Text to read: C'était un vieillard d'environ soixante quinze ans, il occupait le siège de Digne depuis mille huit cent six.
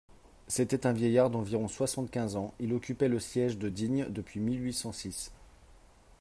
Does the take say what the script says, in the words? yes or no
yes